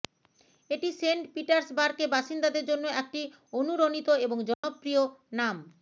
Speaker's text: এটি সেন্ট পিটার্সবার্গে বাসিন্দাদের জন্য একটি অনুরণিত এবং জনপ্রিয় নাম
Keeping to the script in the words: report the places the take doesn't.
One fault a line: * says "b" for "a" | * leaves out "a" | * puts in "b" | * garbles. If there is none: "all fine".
all fine